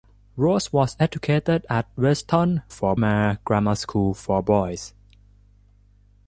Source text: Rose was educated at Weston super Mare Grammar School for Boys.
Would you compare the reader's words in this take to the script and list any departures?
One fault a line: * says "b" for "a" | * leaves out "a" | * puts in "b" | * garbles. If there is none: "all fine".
* says "for" for "super"